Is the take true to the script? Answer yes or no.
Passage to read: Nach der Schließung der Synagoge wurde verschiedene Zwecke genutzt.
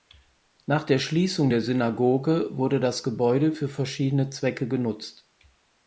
no